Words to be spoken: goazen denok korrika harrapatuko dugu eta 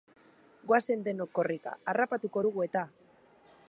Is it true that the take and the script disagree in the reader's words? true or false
false